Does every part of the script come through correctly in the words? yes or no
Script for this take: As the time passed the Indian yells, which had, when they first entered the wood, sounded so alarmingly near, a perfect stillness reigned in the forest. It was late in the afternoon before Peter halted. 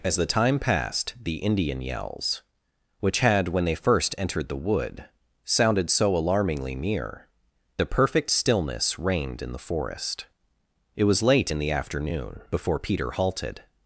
yes